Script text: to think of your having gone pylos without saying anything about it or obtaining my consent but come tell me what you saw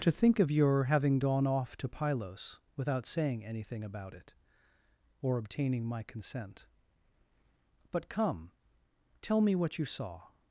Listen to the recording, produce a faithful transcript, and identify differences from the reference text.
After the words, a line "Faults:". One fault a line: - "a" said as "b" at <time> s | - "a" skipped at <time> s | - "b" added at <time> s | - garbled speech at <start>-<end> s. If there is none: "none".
to think of your having gone off to pylos without saying anything about it or obtaining my consent but come tell me what you saw
Faults:
- "off to" added at 1.4 s